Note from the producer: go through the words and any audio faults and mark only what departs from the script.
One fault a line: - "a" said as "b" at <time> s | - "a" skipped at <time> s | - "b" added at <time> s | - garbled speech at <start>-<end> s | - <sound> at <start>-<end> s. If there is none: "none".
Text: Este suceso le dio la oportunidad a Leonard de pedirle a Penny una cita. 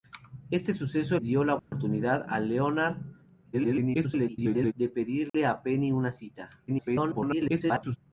- "le" skipped at 1.2 s
- dropout at 1.6-1.7 s
- garbled speech at 3.5-4.7 s
- dropout at 5.3-5.3 s
- garbled speech at 6.7-8.0 s